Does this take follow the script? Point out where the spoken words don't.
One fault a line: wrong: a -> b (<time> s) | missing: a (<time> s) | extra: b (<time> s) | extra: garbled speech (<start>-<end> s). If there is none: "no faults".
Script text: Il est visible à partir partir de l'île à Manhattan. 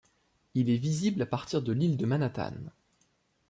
missing: partir (1.6 s)
wrong: à -> de (1.9 s)